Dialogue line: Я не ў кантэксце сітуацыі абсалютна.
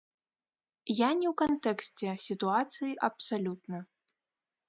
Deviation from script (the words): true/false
false